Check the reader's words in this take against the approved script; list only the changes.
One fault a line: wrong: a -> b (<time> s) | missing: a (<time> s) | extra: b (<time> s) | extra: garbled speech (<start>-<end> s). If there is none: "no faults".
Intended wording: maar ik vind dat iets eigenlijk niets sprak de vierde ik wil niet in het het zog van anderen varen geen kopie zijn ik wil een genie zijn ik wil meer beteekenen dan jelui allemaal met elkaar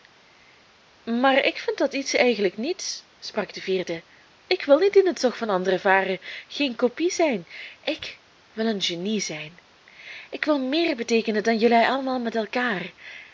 missing: het (5.2 s)